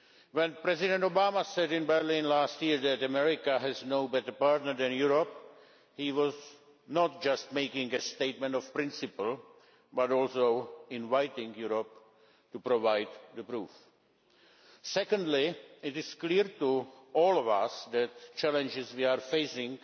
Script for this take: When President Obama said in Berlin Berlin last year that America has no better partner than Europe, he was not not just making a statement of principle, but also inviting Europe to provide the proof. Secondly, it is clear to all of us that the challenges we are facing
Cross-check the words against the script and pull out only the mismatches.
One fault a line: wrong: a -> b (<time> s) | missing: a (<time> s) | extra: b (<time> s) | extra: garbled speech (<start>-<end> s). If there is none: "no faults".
missing: Berlin (2.2 s)
missing: not (7.2 s)